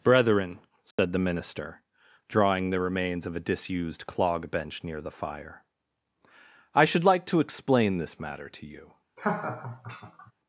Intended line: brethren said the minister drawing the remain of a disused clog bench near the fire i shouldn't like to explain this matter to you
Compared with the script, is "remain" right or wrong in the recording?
wrong